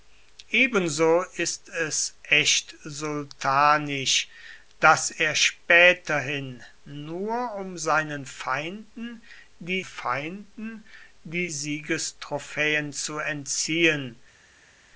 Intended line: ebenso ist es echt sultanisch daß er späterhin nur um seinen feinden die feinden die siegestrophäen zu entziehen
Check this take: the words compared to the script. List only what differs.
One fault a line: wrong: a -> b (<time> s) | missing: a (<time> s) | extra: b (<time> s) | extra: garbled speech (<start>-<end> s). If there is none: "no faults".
no faults